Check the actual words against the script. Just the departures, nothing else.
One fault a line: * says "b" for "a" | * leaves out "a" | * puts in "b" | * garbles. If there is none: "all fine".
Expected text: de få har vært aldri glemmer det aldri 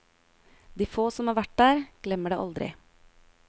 * puts in "som"
* says "der" for "aldri"